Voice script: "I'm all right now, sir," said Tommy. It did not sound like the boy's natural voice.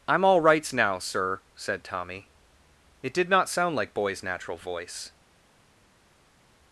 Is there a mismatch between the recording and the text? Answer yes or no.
yes